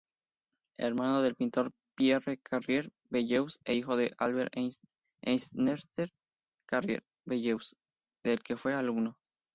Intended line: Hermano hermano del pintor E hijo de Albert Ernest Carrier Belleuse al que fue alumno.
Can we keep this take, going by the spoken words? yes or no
no